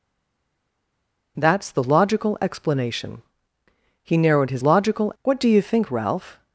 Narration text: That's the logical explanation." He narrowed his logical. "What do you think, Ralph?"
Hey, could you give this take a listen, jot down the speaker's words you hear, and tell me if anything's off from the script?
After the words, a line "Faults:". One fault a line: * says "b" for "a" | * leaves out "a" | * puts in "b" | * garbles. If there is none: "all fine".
That's the logical explanation." He narrowed his logical. "What do you think, Ralph?"
Faults:
all fine